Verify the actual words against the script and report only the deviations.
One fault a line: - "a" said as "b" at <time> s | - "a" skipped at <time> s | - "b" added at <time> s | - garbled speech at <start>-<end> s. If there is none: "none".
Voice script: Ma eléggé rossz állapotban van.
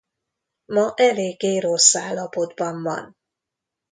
none